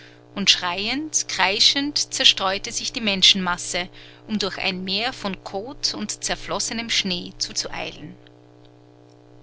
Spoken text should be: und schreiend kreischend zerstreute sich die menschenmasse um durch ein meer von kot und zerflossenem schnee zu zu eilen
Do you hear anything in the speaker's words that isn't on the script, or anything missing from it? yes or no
no